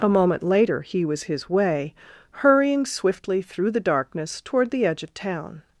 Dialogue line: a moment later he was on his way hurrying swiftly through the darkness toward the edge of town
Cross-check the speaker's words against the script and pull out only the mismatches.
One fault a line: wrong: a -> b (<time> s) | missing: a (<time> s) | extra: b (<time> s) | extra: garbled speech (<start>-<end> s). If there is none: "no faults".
missing: on (1.2 s)